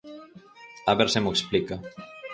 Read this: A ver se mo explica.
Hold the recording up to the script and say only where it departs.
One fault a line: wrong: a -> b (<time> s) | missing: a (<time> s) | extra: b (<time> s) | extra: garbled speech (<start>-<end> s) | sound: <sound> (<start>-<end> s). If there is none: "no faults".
no faults